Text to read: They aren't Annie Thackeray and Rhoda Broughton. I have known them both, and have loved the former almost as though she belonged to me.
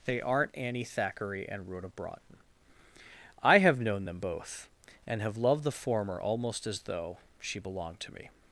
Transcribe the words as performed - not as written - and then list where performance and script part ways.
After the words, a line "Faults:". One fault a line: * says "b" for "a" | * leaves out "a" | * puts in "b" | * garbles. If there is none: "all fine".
They aren't Annie Thackeray and Rhoda Broughton. I have known them both, and have loved the former almost as though she belonged to me.
Faults:
all fine